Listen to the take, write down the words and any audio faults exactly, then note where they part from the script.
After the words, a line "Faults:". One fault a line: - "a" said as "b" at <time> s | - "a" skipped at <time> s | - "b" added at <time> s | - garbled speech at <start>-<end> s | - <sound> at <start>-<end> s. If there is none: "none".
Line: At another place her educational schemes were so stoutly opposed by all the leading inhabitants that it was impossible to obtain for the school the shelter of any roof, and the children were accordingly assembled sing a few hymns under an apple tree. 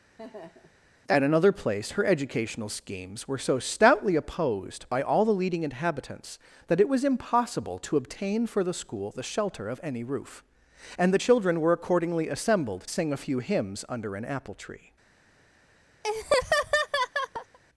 At another place her educational schemes were so stoutly opposed by all the leading inhabitants that it was impossible to obtain for the school the shelter of any roof, and the children were accordingly assembled sing a few hymns under an apple tree.
Faults:
- laugh at 0.2-0.8 s
- laugh at 16.0-17.6 s